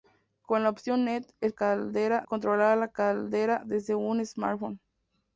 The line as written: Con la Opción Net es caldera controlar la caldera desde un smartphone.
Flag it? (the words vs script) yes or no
no